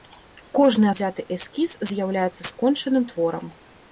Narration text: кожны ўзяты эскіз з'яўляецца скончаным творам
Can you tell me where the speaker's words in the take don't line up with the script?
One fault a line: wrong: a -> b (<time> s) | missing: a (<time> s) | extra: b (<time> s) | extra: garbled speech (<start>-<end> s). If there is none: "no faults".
no faults